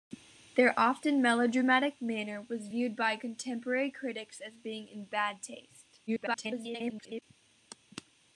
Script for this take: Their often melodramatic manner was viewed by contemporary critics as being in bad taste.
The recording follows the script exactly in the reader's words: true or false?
false